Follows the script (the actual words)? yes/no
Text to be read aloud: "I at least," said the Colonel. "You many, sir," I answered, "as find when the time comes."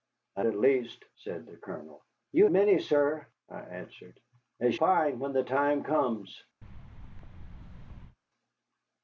yes